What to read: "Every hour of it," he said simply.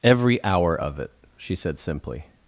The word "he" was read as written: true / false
false